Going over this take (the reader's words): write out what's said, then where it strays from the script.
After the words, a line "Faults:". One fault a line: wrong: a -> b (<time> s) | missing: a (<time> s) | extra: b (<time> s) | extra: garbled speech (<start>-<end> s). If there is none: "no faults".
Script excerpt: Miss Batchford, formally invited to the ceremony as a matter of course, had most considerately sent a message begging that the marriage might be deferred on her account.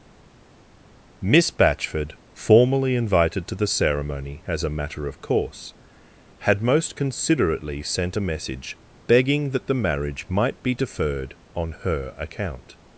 Miss Batchford, formally invited to the ceremony as a matter of course, had most considerately sent a message begging that the marriage might be deferred on her account.
Faults:
no faults